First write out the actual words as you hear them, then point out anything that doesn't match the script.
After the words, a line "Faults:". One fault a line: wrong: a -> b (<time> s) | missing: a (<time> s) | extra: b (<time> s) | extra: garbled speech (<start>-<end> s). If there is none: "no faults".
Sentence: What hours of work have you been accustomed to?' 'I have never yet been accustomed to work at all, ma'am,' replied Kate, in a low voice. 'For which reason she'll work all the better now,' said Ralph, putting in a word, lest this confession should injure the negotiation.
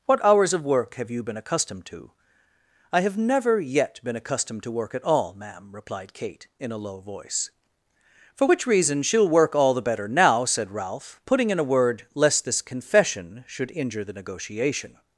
What hours of work have you been accustomed to?' 'I have never yet been accustomed to work at all, ma'am,' replied Kate, in a low voice. 'For which reason she'll work all the better now,' said Ralph, putting in a word, lest this confession should injure the negotiation.
Faults:
no faults